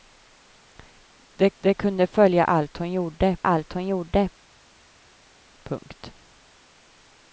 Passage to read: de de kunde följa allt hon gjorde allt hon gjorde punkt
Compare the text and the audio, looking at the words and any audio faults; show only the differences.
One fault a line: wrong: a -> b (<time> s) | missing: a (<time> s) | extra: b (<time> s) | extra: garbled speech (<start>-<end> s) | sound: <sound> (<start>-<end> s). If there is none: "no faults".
no faults